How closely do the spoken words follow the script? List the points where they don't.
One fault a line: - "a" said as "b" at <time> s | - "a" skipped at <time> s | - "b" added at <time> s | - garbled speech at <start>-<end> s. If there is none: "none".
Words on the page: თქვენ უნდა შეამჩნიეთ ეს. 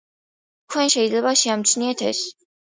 - "უნდა" said as "შეიძლება" at 0.9 s